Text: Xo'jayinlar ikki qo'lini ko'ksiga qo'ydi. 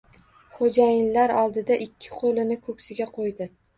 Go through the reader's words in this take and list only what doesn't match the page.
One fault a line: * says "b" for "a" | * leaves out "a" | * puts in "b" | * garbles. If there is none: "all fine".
* puts in "oldida"